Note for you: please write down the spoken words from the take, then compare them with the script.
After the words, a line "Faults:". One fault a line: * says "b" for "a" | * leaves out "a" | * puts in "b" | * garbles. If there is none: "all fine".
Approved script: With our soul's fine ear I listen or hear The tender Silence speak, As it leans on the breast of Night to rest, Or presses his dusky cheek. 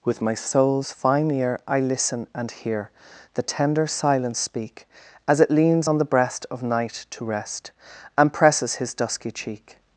With my soul's fine ear I listen and hear The tender Silence speak, As it leans on the breast of Night to rest, And presses his dusky cheek.
Faults:
* says "my" for "our"
* says "and" for "or"
* says "And" for "Or"